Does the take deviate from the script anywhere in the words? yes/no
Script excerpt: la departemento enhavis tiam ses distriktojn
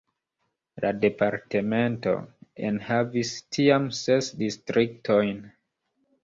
no